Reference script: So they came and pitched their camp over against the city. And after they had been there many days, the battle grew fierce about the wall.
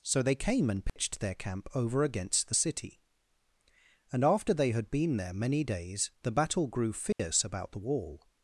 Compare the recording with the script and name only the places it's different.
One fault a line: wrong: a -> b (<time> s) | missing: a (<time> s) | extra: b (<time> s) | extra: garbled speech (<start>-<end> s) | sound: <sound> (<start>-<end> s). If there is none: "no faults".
sound: dropout (0.9-1.0 s)
sound: dropout (7.1-7.2 s)